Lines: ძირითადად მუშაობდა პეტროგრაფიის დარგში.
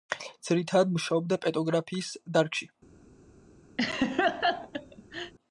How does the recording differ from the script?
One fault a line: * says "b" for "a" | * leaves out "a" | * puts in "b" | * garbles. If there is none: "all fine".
all fine